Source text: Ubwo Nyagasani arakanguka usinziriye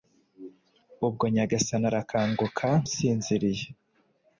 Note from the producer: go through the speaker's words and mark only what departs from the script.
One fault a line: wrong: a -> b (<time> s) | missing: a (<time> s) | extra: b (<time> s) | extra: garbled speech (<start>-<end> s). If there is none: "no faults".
no faults